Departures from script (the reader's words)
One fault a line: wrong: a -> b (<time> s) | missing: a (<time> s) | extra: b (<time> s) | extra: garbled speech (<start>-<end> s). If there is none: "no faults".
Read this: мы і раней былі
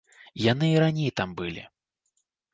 wrong: мы -> яны (0.5 s)
extra: там (1.2 s)